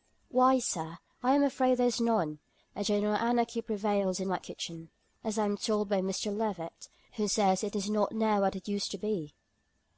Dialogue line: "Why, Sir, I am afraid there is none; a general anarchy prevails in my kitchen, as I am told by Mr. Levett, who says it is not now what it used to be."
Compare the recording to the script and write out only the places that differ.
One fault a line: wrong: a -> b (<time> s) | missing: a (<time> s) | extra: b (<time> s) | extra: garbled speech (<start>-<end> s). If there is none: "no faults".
no faults